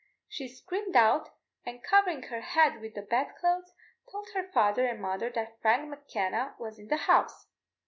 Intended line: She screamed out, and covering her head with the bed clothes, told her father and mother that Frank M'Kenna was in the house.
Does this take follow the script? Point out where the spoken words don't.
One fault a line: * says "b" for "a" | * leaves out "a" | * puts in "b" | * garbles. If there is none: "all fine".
all fine